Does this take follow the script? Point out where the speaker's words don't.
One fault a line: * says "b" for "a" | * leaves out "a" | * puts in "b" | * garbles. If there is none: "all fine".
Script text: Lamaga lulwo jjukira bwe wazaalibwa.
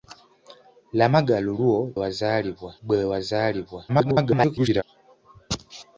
* says "wazaalibwa" for "jjukira"
* garbles